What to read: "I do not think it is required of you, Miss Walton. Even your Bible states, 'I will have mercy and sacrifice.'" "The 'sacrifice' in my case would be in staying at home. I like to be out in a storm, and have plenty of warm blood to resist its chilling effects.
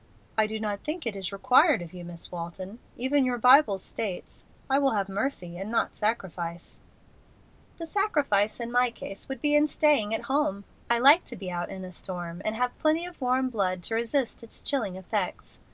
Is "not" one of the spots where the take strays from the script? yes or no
no